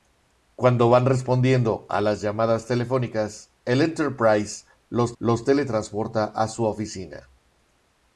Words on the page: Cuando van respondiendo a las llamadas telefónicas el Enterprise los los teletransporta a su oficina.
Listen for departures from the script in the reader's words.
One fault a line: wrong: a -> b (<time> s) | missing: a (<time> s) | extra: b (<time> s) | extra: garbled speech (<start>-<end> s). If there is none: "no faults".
no faults